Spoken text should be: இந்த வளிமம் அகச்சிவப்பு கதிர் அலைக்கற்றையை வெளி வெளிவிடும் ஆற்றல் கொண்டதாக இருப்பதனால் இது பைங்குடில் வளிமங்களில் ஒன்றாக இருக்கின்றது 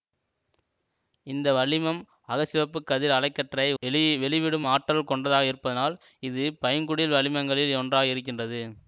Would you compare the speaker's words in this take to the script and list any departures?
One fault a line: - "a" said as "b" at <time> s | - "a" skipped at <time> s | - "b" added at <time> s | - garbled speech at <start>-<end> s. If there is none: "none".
none